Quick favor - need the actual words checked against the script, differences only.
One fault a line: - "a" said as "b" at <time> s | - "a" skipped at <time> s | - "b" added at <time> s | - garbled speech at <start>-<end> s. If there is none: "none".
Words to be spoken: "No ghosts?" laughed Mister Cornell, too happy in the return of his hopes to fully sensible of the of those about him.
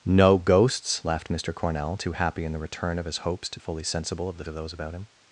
none